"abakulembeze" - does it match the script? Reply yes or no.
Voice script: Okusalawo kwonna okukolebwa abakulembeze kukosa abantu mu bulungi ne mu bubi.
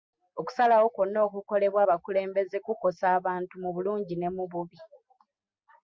yes